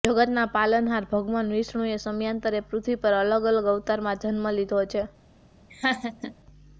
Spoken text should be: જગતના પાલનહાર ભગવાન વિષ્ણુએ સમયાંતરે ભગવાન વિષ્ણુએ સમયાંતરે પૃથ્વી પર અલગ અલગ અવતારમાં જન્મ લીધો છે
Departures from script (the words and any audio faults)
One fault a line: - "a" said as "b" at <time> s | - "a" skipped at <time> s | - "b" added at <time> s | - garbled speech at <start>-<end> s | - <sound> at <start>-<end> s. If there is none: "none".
- "ભગવાન વિષ્ણુએ સમયાંતરે" skipped at 2.6 s
- laugh at 5.7-6.3 s